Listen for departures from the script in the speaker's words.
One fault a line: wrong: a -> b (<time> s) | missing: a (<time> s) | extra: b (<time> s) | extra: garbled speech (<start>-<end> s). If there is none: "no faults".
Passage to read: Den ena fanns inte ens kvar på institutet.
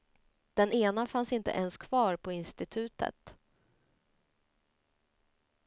no faults